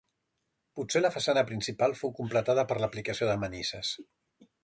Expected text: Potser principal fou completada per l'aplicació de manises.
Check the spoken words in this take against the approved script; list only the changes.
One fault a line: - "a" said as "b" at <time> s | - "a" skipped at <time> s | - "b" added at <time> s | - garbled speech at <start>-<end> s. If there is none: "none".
- "la façana" added at 1.0 s